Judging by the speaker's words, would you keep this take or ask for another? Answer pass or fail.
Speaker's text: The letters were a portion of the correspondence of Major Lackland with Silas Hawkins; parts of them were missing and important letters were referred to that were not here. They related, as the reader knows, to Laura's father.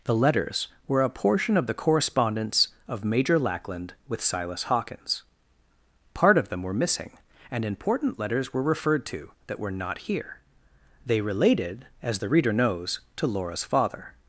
fail